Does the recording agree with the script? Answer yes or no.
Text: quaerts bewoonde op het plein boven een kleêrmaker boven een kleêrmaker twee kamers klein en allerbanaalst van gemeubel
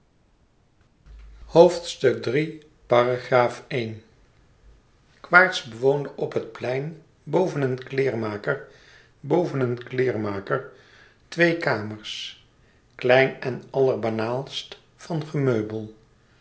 yes